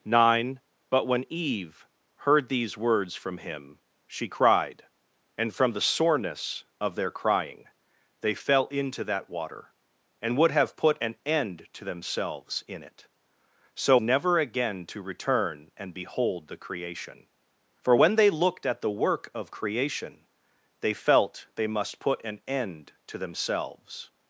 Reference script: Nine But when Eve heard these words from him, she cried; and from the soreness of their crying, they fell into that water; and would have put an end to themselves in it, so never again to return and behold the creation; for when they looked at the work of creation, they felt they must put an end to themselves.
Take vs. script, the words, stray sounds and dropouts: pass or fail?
pass